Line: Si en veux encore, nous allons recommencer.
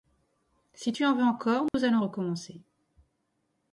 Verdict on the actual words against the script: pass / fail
fail